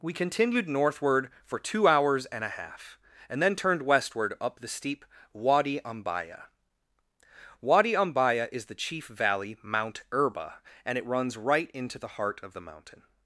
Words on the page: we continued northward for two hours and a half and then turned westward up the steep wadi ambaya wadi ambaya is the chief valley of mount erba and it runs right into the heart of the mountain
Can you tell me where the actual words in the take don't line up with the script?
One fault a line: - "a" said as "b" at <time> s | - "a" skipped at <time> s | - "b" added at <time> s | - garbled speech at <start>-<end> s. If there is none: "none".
- "of" skipped at 9.6 s